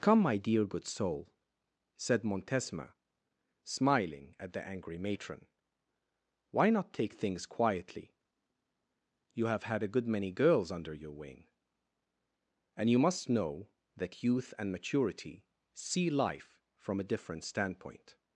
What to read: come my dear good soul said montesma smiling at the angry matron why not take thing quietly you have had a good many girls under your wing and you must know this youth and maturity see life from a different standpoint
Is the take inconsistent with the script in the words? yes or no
yes